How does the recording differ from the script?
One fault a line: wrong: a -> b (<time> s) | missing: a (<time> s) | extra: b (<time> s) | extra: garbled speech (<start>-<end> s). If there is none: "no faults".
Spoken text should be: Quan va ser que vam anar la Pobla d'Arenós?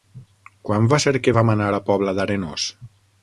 no faults